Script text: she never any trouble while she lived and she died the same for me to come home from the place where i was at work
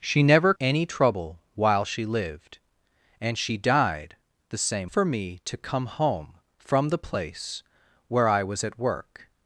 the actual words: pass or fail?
pass